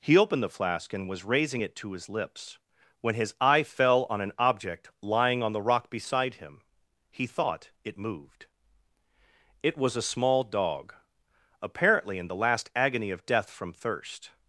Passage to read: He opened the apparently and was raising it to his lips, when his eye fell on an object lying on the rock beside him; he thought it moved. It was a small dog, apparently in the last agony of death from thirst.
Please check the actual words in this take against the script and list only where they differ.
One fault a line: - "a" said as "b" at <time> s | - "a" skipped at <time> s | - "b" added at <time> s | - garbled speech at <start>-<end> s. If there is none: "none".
- "apparently" said as "flask" at 0.5 s